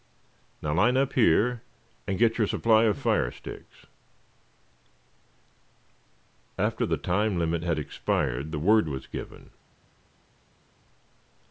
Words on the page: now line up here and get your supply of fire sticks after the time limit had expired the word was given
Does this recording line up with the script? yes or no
yes